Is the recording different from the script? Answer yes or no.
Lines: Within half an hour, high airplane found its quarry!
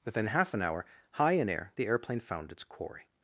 yes